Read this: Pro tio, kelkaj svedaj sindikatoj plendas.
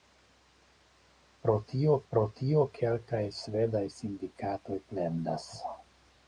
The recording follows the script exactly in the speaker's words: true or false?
false